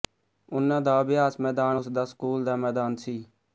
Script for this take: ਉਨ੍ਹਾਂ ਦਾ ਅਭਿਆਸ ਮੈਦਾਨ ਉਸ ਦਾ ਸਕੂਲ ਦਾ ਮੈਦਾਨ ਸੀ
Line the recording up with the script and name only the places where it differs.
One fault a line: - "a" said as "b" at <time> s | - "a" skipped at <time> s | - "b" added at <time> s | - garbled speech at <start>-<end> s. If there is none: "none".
none